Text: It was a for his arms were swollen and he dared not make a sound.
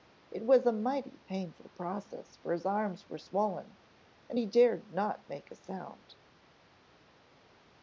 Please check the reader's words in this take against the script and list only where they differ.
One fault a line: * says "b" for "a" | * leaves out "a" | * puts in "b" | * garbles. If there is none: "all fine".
* puts in "mighty painful process"